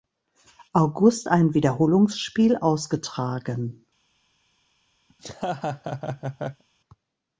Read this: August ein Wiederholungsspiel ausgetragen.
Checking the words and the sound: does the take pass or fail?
fail